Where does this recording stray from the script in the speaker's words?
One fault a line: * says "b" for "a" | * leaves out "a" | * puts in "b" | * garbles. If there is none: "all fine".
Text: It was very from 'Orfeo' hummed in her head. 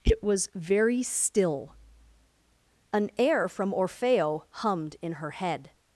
* puts in "still An air"